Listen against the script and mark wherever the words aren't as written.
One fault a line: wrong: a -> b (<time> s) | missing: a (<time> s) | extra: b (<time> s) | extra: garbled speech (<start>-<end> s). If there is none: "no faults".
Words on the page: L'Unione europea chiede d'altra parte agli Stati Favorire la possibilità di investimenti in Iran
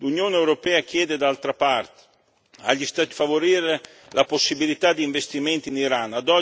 no faults